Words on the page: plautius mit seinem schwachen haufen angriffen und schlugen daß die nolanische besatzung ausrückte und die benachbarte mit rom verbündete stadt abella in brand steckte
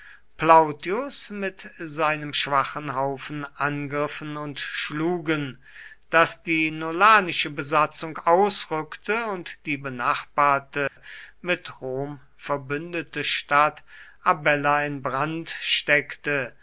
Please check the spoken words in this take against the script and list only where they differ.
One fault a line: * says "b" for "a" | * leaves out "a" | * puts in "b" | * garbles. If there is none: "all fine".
all fine